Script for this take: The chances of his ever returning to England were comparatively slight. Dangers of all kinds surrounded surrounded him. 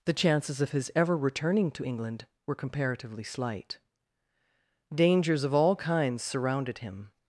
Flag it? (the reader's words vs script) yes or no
yes